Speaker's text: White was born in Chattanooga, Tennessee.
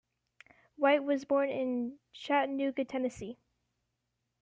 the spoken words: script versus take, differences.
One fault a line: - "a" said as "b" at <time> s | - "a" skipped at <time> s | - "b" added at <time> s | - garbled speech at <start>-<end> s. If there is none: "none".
none